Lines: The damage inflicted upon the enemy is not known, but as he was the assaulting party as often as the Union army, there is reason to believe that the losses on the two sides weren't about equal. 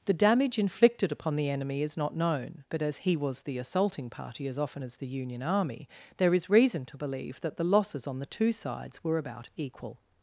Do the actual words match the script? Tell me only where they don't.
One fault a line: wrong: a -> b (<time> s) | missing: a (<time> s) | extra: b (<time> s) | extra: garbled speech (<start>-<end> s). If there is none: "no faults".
wrong: weren't -> were (9.0 s)